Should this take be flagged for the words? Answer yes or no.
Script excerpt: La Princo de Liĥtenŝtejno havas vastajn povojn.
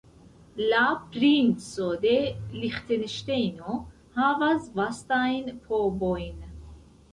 no